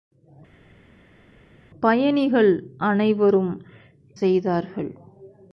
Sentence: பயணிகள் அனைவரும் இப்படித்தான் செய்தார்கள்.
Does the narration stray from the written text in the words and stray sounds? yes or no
yes